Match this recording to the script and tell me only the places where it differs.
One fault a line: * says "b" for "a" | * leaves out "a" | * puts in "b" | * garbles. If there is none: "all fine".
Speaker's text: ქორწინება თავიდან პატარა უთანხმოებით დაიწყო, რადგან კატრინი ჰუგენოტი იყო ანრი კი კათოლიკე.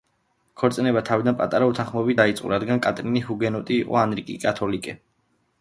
all fine